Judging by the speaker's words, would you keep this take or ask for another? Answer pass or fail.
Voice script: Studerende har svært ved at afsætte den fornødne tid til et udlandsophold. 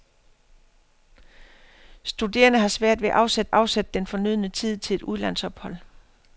fail